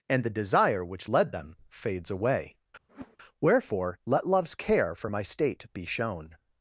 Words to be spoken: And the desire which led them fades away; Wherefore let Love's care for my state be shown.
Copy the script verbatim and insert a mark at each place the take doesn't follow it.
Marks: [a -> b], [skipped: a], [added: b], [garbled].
And the desire which led them fades away; Wherefore let Love's care for my state be shown.